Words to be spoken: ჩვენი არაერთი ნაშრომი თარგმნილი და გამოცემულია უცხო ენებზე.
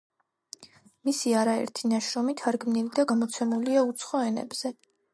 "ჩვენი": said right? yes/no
no